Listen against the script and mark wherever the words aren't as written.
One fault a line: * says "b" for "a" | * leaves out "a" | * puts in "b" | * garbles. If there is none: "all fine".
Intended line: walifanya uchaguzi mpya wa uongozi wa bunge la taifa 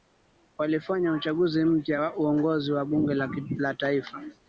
all fine